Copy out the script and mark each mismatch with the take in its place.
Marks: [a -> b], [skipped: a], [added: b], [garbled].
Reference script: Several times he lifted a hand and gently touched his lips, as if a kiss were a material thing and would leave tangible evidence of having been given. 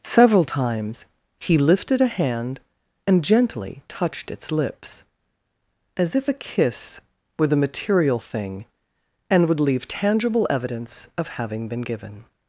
Several times he lifted a hand and gently touched [his -> its] lips, as if a kiss were [a -> the] material thing and would leave tangible evidence of having been given.